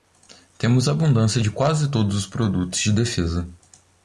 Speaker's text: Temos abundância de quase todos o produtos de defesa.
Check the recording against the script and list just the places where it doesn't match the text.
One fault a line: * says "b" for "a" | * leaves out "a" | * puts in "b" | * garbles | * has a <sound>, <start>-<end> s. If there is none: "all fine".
* says "os" for "o"